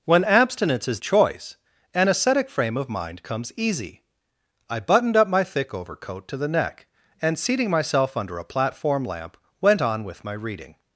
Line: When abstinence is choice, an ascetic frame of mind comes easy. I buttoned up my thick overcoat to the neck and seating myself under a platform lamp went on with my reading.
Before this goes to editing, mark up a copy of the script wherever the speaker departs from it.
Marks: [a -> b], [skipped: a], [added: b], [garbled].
When abstinence is choice, an ascetic frame of mind comes easy. I buttoned up my thick overcoat to the neck and seating myself under a platform lamp went on with my reading.